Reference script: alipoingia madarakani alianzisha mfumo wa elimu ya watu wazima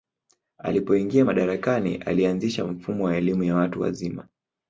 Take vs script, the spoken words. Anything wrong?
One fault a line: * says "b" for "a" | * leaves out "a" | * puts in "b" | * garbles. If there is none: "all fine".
all fine